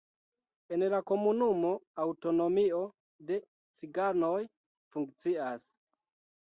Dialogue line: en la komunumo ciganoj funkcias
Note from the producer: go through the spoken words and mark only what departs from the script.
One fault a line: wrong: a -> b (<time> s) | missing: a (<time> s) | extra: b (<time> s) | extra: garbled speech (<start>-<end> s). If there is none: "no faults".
extra: aŭtonomio de (2.1 s)